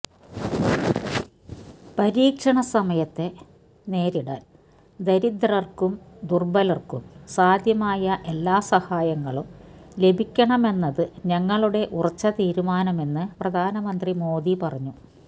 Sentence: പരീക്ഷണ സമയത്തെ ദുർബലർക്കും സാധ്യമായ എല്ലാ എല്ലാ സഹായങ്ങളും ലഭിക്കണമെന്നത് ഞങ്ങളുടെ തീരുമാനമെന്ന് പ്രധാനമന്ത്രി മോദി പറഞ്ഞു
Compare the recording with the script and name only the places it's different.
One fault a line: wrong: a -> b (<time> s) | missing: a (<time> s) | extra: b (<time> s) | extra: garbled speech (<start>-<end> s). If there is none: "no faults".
extra: നേരിടാൻ ദരിദ്രർക്കും (3.9 s)
missing: എല്ലാ (8.6 s)
extra: ഉറച്ച (11.9 s)